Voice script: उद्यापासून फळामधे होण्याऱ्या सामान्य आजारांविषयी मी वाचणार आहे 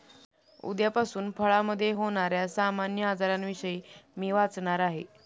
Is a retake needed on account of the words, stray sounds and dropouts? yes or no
no